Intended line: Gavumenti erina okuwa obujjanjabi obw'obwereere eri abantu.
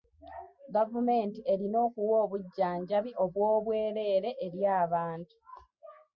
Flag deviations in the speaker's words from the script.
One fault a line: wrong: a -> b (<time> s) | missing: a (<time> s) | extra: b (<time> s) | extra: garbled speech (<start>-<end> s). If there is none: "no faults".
no faults